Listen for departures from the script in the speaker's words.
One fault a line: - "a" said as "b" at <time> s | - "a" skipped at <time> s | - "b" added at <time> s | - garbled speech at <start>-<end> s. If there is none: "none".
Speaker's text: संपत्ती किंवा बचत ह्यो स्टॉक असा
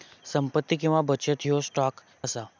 none